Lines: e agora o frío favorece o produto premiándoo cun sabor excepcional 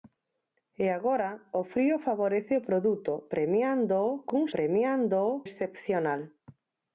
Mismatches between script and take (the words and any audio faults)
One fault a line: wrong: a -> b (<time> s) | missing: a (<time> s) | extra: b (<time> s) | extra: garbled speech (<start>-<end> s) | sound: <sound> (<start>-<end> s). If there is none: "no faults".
wrong: sabor -> premiándoo (4.5 s)